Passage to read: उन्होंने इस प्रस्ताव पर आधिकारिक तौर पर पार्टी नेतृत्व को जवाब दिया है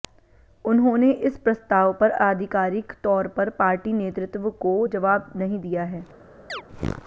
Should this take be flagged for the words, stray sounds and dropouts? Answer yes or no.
yes